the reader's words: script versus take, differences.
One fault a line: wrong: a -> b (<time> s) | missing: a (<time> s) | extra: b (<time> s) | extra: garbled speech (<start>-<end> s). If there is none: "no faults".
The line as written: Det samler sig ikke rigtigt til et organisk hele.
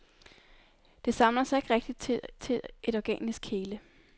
extra: til (2.4 s)